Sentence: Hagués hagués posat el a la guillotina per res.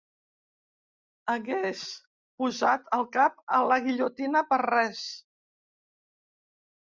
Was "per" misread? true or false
false